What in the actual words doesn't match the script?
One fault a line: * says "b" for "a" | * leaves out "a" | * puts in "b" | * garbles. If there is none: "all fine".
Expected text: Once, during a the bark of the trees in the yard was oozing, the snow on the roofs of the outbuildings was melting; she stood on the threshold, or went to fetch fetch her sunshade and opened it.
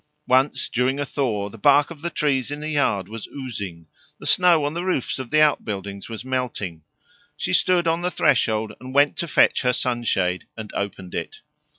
* puts in "thaw"
* says "and" for "or"
* leaves out "fetch"